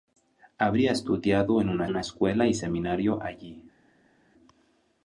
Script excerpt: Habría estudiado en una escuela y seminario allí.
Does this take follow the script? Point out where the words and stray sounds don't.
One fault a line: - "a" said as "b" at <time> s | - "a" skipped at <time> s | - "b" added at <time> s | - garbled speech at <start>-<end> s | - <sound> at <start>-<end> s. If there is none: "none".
- "una" added at 1.9 s